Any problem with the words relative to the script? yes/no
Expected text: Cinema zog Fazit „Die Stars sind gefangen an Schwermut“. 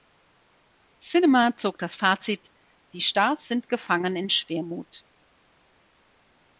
yes